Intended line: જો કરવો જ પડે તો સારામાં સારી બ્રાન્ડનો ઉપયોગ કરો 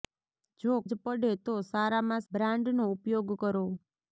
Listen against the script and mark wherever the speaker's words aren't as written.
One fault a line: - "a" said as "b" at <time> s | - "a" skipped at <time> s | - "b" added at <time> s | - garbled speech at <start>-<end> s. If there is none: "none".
- "કરવો" skipped at 0.7 s
- "સારી" skipped at 2.2 s